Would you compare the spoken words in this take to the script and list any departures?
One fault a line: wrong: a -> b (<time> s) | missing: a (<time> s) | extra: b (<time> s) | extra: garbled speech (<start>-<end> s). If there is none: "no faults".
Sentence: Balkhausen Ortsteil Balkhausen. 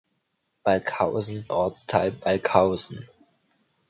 no faults